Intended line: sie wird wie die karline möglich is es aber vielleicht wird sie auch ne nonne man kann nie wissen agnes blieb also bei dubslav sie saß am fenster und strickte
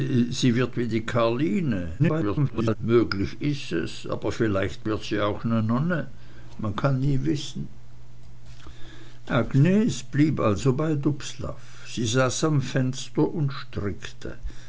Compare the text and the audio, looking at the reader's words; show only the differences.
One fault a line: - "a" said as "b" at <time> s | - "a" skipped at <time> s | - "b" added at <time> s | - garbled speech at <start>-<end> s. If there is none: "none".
- garbled speech at 2.0-2.8 s